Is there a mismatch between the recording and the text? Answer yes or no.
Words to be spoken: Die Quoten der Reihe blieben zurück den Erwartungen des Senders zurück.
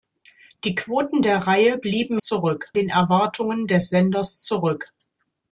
no